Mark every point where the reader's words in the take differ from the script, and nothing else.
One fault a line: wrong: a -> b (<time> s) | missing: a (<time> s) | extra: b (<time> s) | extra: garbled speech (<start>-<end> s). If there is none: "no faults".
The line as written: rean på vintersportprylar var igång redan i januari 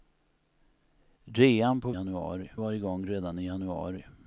wrong: vintersportprylar -> januari (1.9 s)